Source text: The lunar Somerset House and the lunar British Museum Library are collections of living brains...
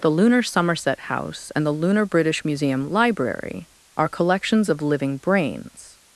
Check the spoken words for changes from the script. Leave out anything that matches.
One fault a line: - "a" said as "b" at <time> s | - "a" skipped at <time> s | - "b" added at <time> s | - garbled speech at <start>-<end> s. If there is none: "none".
none